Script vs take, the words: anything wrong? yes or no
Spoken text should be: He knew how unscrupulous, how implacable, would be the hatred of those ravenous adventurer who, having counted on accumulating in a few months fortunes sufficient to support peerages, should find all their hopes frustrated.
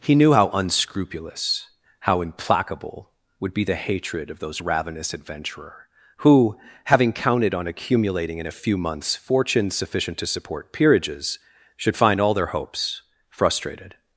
no